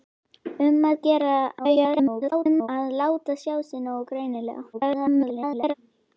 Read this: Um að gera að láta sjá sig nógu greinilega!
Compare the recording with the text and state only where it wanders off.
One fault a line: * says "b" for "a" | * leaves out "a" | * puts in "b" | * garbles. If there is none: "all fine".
* garbles
* garbles